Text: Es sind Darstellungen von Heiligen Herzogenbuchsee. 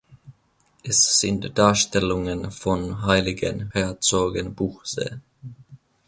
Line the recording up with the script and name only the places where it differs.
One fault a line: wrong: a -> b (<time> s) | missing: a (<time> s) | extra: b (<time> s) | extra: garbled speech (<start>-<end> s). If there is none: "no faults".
no faults